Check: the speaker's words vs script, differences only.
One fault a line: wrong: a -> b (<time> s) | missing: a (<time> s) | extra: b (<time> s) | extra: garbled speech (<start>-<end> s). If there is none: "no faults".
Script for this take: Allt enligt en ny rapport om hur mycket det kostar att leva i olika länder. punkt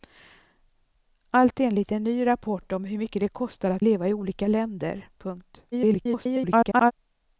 extra: garbled speech (5.7-6.9 s)